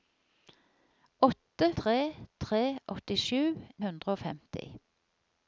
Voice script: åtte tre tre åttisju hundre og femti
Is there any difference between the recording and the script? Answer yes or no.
no